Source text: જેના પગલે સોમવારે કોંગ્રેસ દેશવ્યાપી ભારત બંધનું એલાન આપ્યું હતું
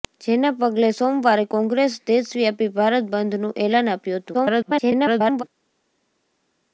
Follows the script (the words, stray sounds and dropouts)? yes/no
no